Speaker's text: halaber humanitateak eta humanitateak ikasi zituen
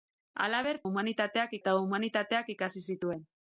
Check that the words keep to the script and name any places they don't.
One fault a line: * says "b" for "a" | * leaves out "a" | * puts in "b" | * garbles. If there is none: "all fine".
all fine